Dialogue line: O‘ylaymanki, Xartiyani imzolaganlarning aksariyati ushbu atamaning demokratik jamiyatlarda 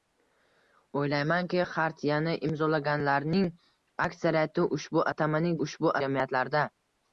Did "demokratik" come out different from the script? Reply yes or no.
yes